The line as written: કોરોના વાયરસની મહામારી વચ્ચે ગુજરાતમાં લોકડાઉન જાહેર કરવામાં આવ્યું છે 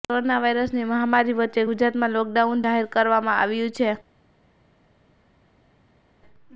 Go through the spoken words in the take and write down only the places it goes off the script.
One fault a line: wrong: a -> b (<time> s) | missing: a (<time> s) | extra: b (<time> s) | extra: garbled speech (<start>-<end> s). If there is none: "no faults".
no faults